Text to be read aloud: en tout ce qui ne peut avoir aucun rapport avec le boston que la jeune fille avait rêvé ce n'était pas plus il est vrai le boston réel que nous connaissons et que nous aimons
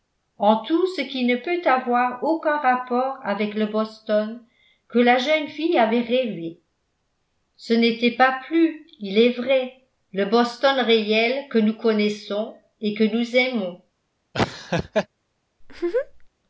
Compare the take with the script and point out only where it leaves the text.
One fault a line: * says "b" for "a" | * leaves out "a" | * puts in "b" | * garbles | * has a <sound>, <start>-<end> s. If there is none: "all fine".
* has a laugh, 14.3-15.1 s
* has a laugh, 15.6-16.3 s